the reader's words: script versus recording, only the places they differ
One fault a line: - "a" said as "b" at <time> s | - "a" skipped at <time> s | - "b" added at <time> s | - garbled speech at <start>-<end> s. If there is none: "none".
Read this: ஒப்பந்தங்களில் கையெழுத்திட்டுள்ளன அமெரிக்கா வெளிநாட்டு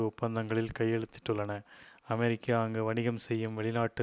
- "அங்கு வணிகம் செய்யும்" added at 2.6 s